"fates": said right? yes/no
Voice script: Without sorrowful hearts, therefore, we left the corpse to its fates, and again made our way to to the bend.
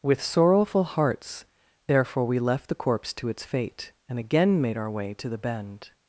no